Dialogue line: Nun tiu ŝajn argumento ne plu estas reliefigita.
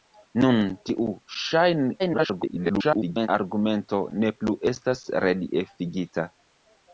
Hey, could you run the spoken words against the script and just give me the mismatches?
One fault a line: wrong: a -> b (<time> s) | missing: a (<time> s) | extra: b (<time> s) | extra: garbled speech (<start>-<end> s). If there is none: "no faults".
extra: garbled speech (2.0-3.3 s)